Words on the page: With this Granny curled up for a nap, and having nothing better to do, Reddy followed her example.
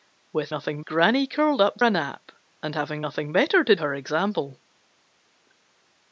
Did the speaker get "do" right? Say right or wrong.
wrong